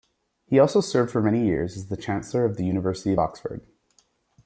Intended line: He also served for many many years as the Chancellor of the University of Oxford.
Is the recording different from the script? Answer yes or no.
yes